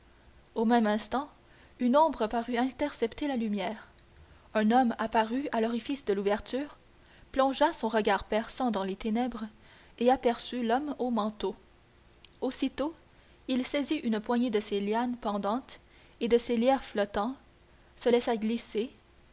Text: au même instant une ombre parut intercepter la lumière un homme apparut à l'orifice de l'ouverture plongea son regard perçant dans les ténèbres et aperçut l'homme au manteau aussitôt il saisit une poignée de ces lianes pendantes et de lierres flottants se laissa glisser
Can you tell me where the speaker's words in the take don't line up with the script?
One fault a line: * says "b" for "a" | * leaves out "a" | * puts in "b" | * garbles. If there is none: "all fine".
* puts in "ces"